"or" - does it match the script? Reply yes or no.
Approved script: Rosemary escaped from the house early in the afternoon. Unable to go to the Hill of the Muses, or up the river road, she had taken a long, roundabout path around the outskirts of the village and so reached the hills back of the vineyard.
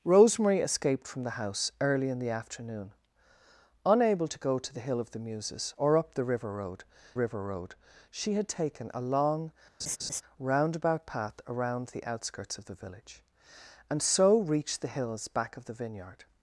yes